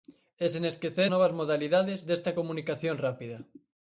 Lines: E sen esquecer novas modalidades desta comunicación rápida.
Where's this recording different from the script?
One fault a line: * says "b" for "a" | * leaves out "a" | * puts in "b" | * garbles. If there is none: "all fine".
all fine